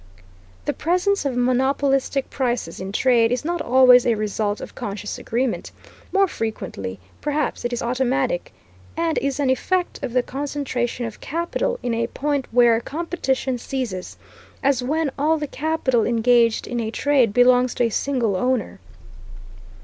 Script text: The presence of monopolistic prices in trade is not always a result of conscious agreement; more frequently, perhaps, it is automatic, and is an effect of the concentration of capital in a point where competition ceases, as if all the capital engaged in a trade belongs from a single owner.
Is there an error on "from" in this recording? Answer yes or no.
yes